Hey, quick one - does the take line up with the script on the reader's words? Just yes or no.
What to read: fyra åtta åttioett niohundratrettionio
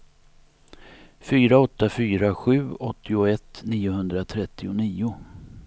no